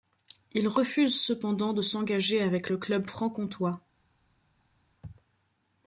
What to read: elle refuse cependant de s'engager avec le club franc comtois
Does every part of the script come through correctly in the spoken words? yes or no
no